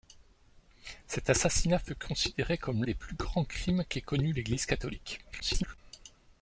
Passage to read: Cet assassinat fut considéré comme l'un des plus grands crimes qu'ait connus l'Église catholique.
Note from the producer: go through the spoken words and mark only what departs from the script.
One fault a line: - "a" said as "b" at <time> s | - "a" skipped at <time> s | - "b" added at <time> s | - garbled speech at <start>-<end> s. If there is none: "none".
- "l'un" skipped at 2.8 s
- garbled speech at 5.3-5.8 s